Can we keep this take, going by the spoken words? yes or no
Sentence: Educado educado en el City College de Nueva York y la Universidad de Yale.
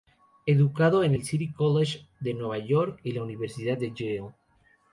no